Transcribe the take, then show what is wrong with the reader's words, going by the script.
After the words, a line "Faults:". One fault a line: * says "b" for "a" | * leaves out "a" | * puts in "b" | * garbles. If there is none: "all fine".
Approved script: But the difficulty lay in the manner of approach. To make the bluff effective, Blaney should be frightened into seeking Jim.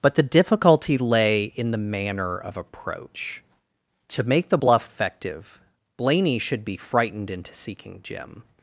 But the difficulty lay in the manner of approach. To make the bluff effective, Blaney should be frightened into seeking Jim.
Faults:
all fine